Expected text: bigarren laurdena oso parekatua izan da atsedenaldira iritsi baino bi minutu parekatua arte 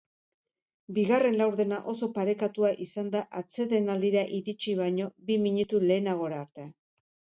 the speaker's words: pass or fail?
fail